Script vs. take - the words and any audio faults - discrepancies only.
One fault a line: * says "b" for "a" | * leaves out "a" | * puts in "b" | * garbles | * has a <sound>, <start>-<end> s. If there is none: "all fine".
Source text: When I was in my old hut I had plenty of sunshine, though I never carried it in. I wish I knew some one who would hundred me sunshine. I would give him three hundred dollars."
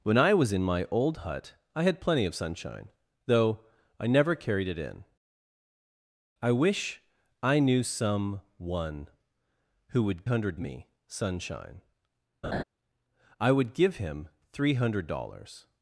* has a laugh, 12.4-12.6 s